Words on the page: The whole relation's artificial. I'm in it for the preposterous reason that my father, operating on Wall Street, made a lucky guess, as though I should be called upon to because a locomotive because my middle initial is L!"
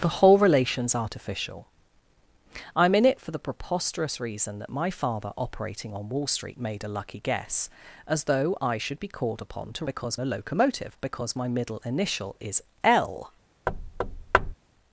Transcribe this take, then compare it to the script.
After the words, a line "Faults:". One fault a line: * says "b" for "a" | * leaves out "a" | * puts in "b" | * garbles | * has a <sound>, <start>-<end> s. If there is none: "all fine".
The whole relation's artificial. I'm in it for the preposterous reason that my father, operating on Wall Street, made a lucky guess, as though I should be called upon to because a locomotive because my middle initial is L!"
Faults:
* has a thud, 13.7-14.5 s